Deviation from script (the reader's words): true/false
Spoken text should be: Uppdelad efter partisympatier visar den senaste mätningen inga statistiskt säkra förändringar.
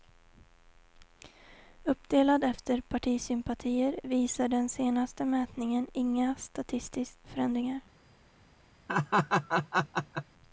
true